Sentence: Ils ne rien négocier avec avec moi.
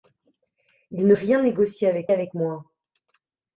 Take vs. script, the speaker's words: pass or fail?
pass